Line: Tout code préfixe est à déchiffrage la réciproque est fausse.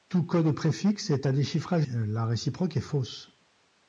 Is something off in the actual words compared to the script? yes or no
no